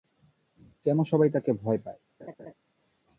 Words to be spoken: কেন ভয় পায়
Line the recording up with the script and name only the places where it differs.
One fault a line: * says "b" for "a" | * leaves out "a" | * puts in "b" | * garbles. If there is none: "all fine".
* puts in "সবাই তাকে"